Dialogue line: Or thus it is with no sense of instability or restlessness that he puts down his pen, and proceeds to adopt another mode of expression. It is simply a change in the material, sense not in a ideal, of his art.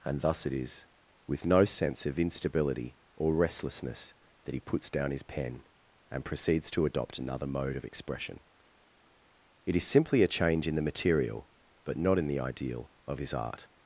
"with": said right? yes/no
yes